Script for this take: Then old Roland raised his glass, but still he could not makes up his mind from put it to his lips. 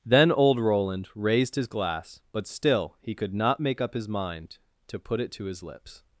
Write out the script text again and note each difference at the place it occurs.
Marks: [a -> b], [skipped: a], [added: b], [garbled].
Then old Roland raised his glass, but still he could not [makes -> make] up his mind [from -> to] put it to his lips.